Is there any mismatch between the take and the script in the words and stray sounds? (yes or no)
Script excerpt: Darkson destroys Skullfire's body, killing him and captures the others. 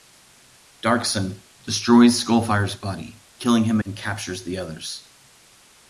no